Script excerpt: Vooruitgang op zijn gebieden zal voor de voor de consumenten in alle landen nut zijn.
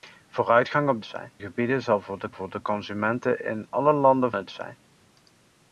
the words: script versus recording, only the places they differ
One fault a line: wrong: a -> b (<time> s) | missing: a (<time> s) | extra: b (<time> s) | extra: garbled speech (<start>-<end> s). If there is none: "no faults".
no faults